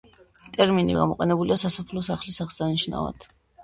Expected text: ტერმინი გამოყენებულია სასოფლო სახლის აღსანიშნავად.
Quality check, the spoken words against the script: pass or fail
pass